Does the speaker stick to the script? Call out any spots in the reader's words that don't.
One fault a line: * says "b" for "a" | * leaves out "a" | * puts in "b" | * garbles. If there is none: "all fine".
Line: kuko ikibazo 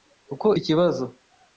all fine